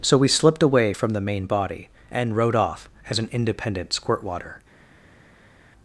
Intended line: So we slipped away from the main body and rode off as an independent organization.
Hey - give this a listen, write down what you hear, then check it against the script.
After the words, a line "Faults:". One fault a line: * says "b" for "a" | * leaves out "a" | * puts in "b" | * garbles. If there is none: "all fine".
So we slipped away from the main body and rode off as an independent squirtwater.
Faults:
* says "squirtwater" for "organization"